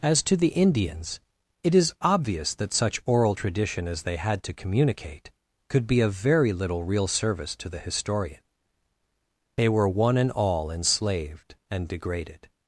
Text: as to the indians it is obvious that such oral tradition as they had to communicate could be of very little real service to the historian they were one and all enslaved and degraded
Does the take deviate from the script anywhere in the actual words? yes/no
no